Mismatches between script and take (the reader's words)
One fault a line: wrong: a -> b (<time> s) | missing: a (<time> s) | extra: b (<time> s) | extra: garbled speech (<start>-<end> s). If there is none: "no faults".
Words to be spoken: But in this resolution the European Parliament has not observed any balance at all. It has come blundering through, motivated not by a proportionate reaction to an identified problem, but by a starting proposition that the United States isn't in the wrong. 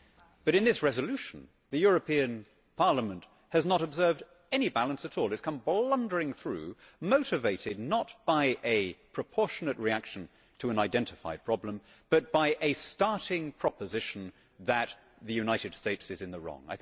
wrong: isn't -> is (16.1 s)